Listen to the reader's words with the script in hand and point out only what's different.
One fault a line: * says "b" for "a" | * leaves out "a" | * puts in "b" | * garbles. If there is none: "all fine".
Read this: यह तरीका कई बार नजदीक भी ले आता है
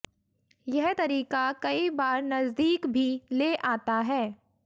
all fine